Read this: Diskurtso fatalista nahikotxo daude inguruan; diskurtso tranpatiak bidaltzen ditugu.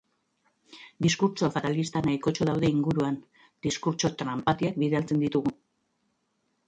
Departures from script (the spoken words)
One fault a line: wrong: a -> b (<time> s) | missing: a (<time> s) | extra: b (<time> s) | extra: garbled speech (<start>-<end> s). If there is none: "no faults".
no faults